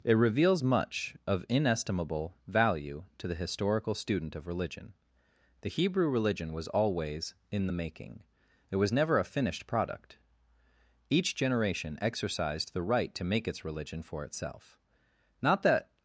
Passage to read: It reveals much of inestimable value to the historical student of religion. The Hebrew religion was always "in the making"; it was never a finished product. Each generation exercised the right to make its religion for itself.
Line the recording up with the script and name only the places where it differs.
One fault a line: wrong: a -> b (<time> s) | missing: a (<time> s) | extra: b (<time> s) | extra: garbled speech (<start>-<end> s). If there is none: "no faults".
extra: Not that (15.4 s)